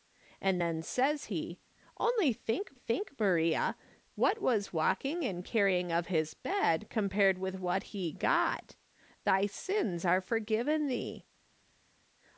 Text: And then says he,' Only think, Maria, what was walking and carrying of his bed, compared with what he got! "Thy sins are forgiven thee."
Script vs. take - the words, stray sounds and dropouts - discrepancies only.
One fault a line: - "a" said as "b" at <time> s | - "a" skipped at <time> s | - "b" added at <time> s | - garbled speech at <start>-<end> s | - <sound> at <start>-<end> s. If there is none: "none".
- "think" added at 2.7 s